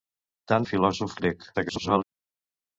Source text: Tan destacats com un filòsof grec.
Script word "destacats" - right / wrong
wrong